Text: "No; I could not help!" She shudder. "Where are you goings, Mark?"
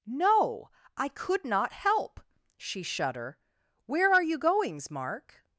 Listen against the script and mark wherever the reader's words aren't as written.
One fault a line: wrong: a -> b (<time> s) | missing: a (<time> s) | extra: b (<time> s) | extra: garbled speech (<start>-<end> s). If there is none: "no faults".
no faults